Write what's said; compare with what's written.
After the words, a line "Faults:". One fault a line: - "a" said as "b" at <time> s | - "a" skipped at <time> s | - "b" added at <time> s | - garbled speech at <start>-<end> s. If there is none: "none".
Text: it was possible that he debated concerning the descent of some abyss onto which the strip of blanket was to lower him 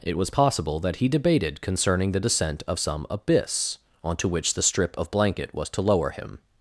it was possible that he debated concerning the descent of some abyss onto which the strip of blanket was to lower him
Faults:
none